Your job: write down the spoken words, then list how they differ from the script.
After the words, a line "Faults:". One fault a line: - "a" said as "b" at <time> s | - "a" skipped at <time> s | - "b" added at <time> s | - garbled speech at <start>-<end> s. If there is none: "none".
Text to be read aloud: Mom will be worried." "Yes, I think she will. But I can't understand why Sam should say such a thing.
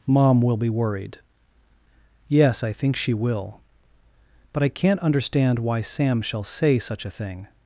Mom will be worried." "Yes, I think she will. But I can't understand why Sam shall say such a thing.
Faults:
- "should" said as "shall" at 6.2 s